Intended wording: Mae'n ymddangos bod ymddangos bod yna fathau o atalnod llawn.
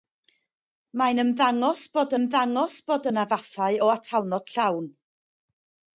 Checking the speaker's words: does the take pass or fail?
pass